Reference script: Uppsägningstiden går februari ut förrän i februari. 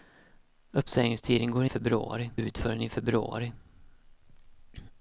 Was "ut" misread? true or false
false